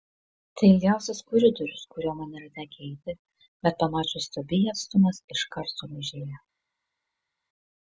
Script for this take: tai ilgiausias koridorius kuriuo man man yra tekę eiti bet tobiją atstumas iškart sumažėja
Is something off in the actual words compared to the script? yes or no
yes